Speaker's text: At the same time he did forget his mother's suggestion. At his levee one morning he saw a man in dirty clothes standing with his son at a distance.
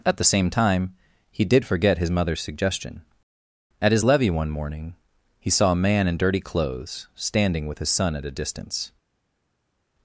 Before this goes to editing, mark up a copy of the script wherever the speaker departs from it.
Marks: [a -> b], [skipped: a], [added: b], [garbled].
At the same time he did forget his mother's suggestion. At his levee one morning he saw a man in dirty clothes standing with his son at a distance.